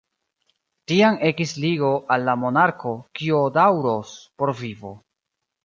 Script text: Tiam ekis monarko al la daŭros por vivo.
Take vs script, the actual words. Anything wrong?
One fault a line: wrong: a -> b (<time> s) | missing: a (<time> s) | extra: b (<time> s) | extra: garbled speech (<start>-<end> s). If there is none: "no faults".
wrong: monarko -> ligo (1.6 s)
extra: monarko kio (2.5 s)